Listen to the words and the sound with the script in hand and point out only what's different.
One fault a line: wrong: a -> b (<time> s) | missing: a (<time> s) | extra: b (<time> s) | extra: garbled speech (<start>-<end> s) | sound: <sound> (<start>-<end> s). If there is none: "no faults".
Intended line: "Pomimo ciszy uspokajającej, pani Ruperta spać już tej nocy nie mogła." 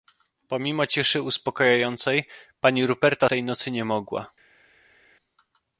missing: spać już (3.3 s)